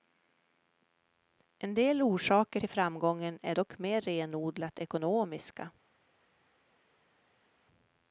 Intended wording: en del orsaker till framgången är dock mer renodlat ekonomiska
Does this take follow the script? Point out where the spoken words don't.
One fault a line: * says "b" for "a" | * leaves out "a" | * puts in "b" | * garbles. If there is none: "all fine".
all fine